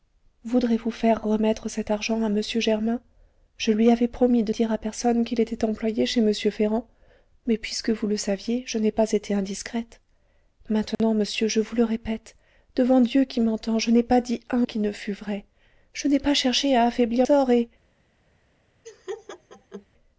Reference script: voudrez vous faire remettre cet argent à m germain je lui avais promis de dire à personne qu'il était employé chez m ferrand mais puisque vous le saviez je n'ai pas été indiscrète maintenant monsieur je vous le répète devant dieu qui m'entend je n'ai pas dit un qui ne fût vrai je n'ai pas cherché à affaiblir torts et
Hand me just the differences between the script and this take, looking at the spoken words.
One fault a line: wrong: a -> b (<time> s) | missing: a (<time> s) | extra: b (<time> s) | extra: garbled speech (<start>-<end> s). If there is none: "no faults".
no faults